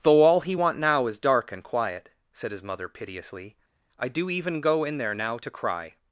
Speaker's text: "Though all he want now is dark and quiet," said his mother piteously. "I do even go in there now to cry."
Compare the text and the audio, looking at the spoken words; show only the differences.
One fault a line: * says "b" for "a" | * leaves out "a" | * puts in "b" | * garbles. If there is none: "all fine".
all fine